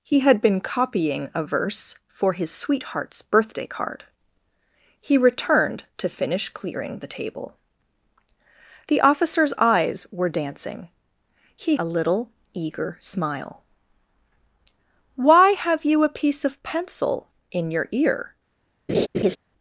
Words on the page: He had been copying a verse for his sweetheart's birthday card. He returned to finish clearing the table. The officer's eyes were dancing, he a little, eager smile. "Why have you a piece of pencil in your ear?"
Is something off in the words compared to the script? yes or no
no